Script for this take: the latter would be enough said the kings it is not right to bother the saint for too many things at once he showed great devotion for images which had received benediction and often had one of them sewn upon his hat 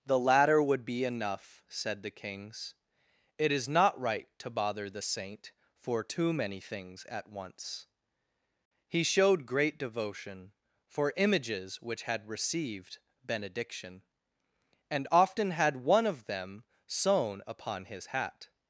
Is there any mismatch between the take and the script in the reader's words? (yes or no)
no